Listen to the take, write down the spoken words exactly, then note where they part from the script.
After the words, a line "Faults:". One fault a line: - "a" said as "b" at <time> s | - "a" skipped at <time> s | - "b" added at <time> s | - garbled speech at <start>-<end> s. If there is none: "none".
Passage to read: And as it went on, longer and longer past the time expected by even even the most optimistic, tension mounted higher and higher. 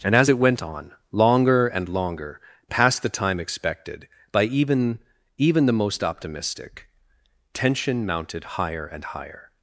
And as it went on, longer and longer past the time expected by even even the most optimistic, tension mounted higher and higher.
Faults:
none